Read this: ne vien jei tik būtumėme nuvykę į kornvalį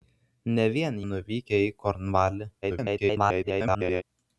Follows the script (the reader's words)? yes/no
no